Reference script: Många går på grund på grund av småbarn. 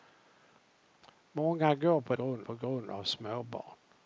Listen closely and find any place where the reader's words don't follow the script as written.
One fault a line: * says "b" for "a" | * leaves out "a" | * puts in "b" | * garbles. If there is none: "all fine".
all fine